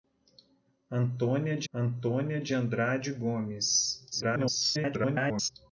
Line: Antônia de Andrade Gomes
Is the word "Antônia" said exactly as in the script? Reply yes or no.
yes